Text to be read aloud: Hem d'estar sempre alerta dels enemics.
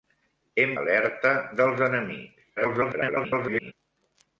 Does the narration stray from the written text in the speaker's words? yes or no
yes